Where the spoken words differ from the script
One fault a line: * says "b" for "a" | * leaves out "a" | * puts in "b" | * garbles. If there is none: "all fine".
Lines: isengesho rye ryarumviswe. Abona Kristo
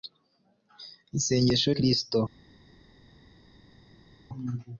* leaves out "rye ryarumviswe Abona"